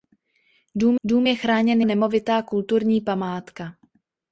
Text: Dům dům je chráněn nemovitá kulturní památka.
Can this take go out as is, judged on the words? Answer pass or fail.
pass